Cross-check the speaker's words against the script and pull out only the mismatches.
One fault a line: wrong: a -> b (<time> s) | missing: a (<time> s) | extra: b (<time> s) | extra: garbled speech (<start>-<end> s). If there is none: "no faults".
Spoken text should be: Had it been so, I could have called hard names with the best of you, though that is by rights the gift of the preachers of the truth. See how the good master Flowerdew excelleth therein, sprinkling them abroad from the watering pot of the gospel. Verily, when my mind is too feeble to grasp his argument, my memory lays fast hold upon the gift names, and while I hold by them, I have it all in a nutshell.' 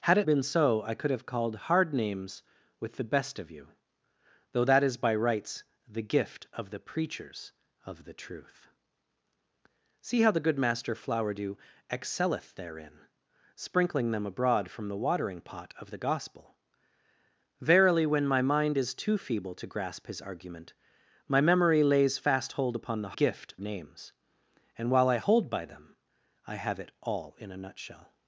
no faults